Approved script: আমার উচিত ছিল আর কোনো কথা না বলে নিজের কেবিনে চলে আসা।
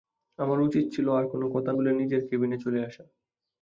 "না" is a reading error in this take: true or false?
true